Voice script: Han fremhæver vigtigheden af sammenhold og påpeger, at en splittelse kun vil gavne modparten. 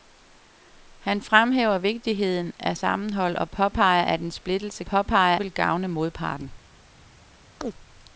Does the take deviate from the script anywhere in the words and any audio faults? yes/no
yes